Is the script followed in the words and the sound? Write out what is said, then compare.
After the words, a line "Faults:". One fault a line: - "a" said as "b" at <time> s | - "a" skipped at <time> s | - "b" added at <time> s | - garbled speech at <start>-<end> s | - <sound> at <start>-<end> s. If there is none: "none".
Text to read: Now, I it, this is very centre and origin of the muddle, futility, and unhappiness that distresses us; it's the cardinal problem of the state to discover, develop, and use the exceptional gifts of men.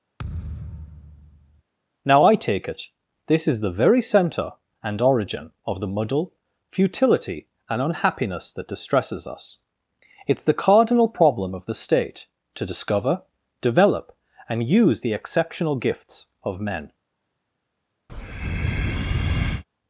Now, I take it, this is the very centre and origin of the muddle, futility, and unhappiness that distresses us; it's the cardinal problem of the state to discover, develop, and use the exceptional gifts of men.
Faults:
- thud at 0.2-1.6 s
- "take" added at 2.4 s
- "the" added at 3.6 s
- breath at 18.1-19.6 s